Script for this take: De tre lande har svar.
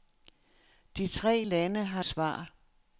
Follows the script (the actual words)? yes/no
yes